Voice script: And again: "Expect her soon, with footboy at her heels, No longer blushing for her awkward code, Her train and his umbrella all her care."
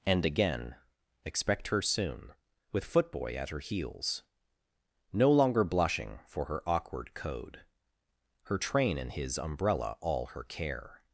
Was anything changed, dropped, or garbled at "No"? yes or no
no